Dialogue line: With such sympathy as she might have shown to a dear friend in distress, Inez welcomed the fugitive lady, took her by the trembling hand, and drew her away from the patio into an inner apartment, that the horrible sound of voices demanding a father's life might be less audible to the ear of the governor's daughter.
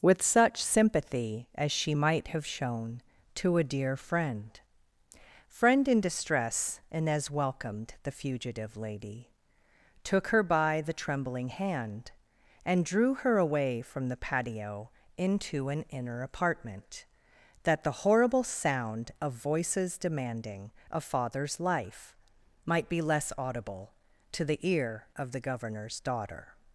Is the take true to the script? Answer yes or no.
no